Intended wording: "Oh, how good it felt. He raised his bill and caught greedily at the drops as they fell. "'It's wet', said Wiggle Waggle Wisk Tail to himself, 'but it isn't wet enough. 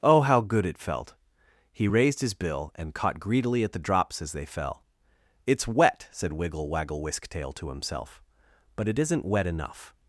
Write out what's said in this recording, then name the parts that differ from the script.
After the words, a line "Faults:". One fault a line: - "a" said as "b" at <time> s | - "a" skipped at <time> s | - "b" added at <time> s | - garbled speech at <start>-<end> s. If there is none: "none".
"Oh, how good it felt. He raised his bill and caught greedily at the drops as they fell. "'It's wet', said Wiggle Waggle Wisk Tail to himself, 'but it isn't wet enough.
Faults:
none